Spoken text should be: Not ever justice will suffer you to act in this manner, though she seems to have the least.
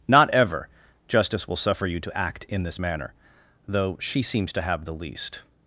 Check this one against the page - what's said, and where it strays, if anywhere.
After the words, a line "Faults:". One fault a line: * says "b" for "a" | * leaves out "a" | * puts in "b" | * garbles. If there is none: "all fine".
Not ever justice will suffer you to act in this manner, though she seems to have the least.
Faults:
all fine